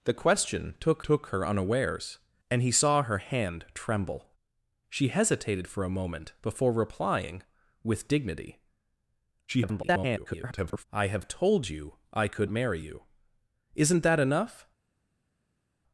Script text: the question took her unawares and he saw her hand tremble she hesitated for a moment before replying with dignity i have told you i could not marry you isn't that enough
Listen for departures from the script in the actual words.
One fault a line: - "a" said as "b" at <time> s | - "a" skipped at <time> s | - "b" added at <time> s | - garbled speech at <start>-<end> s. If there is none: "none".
- "took" added at 1.0 s
- garbled speech at 9.5-10.8 s
- "not" skipped at 12.5 s